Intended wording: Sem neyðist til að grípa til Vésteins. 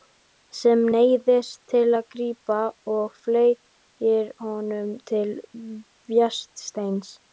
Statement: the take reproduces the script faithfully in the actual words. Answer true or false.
false